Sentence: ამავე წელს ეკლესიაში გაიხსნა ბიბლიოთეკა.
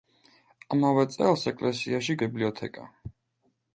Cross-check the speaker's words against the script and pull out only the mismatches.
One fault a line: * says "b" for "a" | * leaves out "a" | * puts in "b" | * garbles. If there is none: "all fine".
* leaves out "გაიხსნა"